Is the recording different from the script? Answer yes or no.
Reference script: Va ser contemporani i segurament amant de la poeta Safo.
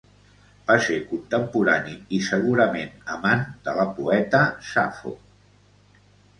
no